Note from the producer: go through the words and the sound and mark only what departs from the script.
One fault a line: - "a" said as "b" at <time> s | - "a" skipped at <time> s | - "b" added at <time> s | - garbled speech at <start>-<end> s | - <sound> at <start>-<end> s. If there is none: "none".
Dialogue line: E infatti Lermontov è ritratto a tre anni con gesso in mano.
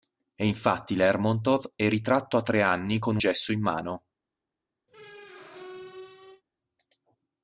- squeak at 4.9-6.4 s